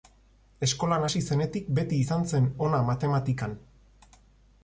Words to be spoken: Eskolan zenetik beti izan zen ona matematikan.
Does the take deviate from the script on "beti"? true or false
false